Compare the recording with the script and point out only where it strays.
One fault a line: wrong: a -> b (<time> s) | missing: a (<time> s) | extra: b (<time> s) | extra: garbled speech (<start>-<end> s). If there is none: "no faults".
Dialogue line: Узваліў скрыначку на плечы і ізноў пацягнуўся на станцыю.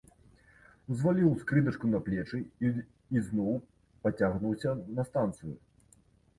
no faults